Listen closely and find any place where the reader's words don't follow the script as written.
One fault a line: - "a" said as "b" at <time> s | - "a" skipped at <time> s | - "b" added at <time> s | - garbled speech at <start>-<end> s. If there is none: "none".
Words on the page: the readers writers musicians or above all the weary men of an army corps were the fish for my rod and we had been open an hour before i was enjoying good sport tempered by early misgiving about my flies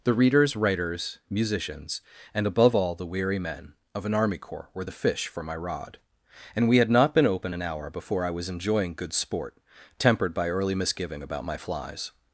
- "or" said as "and" at 2.3 s
- "not" added at 6.9 s